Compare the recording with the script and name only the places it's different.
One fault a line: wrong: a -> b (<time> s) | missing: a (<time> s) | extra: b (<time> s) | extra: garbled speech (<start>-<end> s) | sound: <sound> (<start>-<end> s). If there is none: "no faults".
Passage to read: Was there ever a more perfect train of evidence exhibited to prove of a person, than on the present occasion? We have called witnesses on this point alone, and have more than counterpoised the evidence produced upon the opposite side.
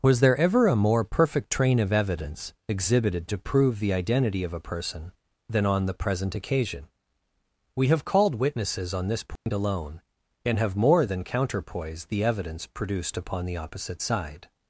extra: the identity (3.8 s)
sound: dropout (9.4-9.5 s)